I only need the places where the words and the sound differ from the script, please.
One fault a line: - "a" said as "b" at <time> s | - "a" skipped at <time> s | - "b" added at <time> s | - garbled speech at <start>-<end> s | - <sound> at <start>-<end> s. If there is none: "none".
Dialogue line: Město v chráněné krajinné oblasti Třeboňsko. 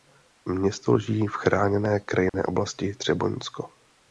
- "leží" added at 0.9 s
- dropout at 2.3-2.3 s